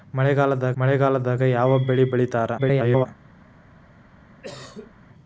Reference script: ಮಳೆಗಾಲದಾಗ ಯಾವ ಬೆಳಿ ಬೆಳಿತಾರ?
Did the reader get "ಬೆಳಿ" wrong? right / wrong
right